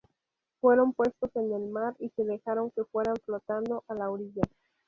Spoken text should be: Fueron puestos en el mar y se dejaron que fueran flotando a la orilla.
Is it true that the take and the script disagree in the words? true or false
false